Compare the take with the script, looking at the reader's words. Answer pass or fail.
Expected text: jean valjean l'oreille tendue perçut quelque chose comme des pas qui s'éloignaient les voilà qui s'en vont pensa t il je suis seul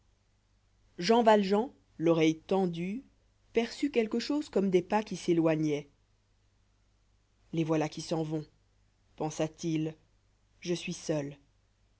pass